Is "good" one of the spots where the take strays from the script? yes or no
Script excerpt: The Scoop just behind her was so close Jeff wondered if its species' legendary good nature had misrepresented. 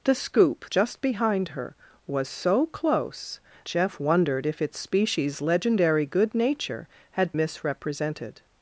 no